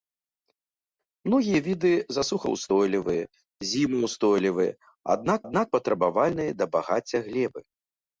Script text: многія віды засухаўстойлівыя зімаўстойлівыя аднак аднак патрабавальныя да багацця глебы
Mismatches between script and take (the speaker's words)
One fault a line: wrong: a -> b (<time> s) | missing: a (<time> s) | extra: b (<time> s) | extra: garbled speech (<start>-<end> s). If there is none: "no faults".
no faults